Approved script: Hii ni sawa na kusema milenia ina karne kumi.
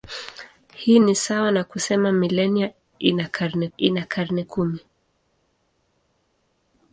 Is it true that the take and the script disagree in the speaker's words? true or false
true